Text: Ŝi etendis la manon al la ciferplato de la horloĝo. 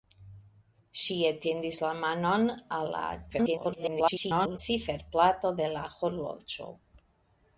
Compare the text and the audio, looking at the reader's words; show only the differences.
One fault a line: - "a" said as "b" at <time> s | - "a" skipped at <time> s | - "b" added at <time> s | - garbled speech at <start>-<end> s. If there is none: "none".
- garbled speech at 3.3-4.6 s